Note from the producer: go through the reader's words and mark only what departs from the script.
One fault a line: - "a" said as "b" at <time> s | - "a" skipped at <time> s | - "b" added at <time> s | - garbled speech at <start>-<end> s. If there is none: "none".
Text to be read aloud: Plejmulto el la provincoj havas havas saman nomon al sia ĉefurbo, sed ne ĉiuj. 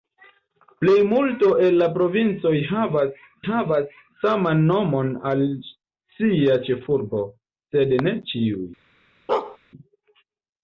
none